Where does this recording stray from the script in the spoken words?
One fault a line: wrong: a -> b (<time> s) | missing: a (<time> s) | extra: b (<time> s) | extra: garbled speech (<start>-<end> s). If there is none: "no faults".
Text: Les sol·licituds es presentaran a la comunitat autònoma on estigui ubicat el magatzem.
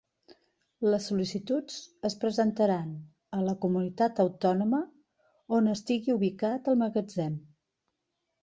no faults